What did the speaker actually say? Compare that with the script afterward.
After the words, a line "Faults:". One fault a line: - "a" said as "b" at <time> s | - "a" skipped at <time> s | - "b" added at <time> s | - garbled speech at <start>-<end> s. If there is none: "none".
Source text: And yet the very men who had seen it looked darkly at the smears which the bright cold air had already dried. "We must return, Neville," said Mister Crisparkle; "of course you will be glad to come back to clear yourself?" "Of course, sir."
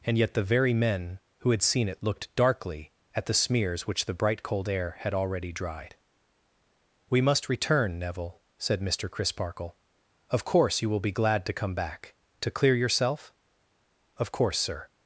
And yet the very men who had seen it looked darkly at the smears which the bright cold air had already dried. "We must return, Neville," said Mister Crisparkle; "of course you will be glad to come back to clear yourself?" "Of course, sir."
Faults:
none